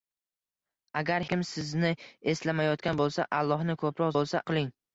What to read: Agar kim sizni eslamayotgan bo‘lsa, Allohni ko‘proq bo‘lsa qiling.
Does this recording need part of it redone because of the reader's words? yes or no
no